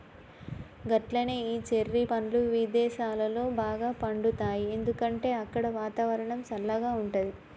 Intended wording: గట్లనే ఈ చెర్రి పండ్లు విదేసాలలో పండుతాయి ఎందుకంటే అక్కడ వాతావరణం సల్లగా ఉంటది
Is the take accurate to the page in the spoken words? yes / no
no